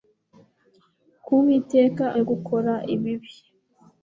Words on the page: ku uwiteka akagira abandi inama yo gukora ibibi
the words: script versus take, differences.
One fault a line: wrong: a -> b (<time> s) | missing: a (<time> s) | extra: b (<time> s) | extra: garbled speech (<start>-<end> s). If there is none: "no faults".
missing: akagira abandi inama (2.0 s)